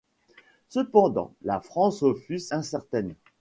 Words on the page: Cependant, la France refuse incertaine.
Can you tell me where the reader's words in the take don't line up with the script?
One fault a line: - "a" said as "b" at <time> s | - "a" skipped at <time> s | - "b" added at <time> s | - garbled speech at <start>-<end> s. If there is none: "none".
none